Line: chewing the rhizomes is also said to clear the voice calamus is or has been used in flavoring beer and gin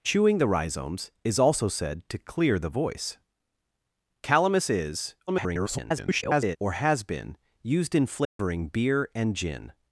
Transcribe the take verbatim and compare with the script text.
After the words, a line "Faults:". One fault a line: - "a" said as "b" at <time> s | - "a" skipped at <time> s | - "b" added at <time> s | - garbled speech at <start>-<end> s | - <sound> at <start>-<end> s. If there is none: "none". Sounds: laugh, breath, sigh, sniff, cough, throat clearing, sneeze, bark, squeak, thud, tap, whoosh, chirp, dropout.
chewing the rhizomes is also said to clear the voice calamus is [garbled] or has been used in flavoring beer and gin
Faults:
- garbled speech at 5.3-6.6 s
- dropout at 8.2-8.4 s